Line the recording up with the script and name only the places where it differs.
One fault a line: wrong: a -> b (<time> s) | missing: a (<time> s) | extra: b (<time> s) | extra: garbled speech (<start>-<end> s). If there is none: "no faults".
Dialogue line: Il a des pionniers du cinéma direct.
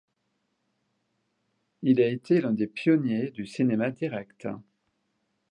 extra: été l'un (2.1 s)